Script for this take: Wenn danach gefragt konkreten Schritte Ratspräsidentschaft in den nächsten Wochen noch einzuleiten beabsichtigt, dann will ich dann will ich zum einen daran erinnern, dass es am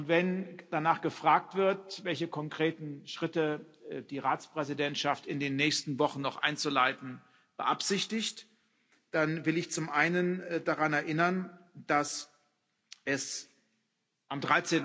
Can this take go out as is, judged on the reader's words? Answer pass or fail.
fail